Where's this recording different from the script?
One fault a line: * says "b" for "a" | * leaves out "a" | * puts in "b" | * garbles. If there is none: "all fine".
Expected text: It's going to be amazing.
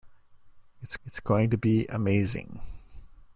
* puts in "it's"